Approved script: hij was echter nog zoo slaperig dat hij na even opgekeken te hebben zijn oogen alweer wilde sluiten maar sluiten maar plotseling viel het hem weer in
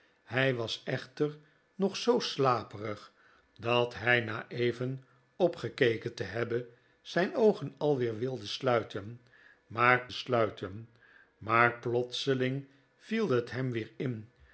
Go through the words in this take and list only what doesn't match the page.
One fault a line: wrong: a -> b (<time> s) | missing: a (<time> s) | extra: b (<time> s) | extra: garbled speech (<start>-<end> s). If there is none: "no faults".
no faults